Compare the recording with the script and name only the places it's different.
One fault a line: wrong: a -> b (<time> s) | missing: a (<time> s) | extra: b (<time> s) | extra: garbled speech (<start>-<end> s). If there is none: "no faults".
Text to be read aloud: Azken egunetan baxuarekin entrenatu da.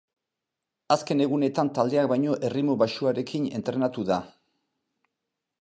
extra: taldeak baino erritmo (1.8 s)